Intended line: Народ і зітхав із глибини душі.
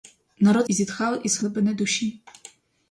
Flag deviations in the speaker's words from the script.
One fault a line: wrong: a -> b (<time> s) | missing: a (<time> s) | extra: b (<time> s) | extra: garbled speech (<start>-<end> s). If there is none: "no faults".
no faults